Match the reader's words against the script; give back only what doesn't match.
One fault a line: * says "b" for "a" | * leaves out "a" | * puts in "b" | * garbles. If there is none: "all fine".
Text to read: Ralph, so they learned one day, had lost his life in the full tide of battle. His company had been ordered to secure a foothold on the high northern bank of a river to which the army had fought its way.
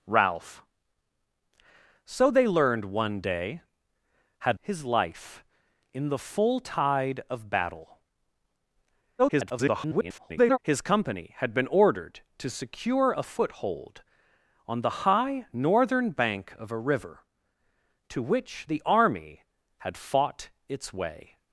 * leaves out "lost"
* garbles